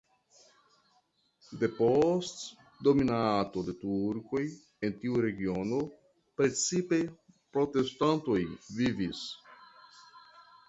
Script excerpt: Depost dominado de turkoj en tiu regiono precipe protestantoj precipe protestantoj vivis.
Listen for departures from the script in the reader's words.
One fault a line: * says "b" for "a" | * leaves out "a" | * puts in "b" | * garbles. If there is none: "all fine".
* leaves out "precipe protestantoj"